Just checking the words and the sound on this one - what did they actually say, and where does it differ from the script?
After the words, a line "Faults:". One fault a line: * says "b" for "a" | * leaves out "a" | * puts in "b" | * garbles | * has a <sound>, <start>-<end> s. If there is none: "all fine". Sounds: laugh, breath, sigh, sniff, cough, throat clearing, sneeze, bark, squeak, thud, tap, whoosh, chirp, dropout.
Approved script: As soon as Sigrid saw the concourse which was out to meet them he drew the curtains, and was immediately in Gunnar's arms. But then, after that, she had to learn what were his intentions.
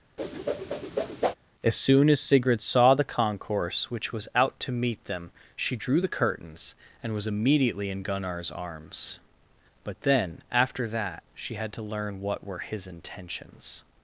As soon as Sigrid saw the concourse which was out to meet them she drew the curtains, and was immediately in Gunnar's arms. But then, after that, she had to learn what were his intentions.
Faults:
* has a whoosh, 0.2-1.3 s
* says "she" for "he"